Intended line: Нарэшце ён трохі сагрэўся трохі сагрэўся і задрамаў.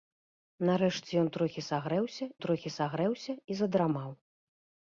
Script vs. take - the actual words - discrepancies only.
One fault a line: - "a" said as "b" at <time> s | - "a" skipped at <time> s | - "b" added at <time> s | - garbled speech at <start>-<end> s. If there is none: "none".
none